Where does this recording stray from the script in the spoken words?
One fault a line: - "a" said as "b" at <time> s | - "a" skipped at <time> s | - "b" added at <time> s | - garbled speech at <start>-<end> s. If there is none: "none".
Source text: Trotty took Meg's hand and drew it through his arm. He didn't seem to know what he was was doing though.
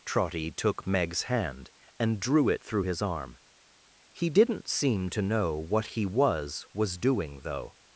none